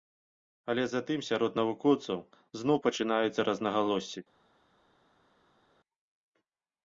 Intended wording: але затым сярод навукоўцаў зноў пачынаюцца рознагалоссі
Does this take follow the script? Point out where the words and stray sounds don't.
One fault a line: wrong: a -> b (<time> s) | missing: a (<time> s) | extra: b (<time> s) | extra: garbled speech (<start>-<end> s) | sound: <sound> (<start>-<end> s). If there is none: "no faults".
no faults